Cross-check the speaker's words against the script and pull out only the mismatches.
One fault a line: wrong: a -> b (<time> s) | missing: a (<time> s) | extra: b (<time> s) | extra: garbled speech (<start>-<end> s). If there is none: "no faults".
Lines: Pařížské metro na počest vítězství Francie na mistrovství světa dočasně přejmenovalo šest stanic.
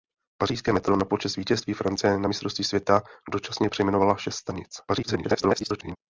extra: garbled speech (4.9-6.0 s)